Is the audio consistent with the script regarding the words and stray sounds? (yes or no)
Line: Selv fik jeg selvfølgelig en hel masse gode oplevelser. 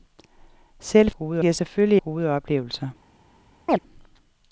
no